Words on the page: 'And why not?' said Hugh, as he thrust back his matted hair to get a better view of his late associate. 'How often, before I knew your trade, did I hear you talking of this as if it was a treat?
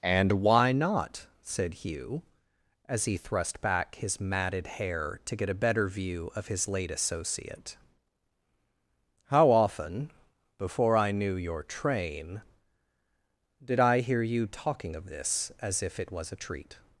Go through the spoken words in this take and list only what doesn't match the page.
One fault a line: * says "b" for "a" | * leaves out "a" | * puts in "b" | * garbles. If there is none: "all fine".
* says "train" for "trade"